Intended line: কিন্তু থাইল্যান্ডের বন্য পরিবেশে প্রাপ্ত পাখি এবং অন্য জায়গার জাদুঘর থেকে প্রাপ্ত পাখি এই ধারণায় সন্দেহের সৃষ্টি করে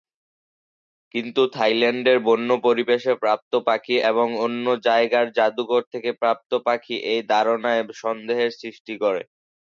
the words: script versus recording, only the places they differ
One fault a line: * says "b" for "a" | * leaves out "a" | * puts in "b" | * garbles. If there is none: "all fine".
all fine